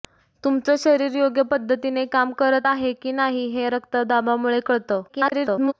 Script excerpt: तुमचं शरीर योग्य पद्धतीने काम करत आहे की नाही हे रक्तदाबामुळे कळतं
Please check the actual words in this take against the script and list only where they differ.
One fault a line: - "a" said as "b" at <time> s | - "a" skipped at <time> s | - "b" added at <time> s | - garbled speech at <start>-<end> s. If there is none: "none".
- garbled speech at 5.1-5.7 s